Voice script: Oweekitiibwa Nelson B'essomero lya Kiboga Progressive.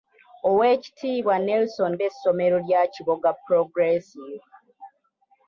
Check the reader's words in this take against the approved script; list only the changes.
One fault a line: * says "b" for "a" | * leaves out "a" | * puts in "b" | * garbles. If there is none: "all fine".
all fine